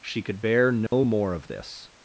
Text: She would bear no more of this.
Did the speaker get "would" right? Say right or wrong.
wrong